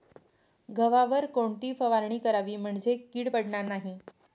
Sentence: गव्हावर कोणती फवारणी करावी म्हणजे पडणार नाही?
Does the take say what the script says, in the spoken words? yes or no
no